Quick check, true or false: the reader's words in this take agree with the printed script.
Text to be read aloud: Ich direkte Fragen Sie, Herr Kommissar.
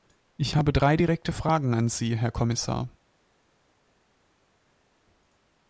false